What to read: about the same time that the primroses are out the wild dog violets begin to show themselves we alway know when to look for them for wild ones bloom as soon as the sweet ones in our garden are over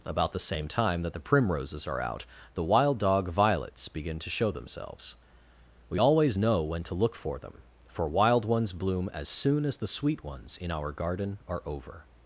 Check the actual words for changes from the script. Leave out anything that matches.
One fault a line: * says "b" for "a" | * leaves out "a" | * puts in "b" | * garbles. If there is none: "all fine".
* says "always" for "alway"